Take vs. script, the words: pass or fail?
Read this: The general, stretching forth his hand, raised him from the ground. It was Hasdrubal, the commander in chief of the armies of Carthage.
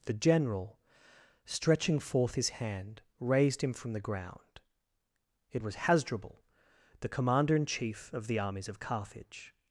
pass